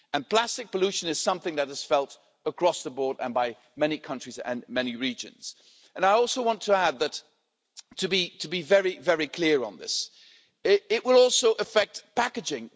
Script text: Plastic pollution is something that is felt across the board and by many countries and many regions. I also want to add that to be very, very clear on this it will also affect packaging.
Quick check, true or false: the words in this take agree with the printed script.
true